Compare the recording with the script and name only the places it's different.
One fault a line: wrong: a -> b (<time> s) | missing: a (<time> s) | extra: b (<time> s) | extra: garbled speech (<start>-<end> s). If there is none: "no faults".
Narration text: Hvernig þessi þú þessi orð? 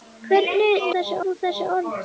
no faults